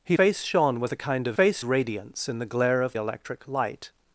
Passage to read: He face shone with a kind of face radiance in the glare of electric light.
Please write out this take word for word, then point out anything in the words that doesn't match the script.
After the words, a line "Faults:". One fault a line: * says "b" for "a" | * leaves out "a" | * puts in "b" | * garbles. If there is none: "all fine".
He face shone with a kind of face radiance in the glare of electric light.
Faults:
all fine